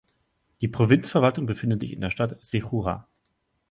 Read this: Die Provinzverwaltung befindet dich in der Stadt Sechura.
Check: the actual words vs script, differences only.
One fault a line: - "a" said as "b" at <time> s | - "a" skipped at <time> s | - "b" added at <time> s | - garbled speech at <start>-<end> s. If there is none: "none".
- "dich" said as "sich" at 1.8 s